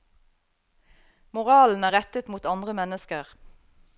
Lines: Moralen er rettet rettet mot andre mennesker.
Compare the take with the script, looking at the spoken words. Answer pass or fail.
fail